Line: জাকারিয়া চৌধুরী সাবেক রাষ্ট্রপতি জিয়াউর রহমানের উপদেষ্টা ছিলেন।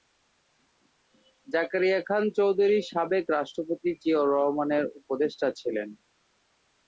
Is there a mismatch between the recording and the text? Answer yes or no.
yes